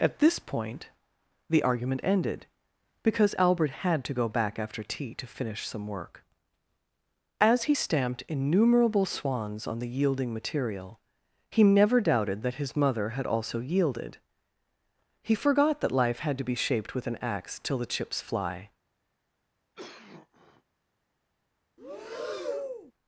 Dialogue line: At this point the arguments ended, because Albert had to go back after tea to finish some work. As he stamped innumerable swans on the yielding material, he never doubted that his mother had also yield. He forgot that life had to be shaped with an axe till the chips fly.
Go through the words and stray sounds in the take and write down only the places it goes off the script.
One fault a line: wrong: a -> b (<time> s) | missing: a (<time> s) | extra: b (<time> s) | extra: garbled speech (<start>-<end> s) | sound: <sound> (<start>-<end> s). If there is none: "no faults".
wrong: arguments -> argument (1.6 s)
wrong: yield -> yielded (13.6 s)
sound: cough (19.7-20.6 s)
sound: breath (21.8-22.9 s)